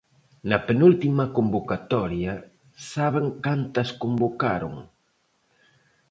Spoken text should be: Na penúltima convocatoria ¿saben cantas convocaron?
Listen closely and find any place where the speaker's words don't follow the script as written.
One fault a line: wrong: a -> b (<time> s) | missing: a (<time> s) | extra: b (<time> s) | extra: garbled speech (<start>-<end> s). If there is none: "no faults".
no faults